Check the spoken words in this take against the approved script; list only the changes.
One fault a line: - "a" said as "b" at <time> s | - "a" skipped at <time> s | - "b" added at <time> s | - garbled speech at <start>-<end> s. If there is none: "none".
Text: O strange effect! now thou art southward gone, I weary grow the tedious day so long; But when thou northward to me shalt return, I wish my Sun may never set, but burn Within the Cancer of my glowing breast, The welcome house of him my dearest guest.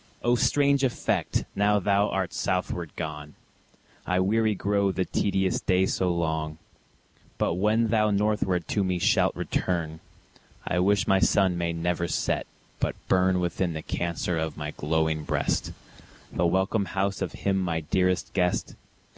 none